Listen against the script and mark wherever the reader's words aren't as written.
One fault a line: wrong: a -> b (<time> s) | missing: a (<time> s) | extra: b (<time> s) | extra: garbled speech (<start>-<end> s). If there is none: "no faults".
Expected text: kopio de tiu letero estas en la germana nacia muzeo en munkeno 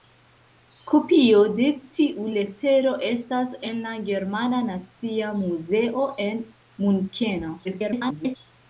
extra: garbled speech (7.6-8.4 s)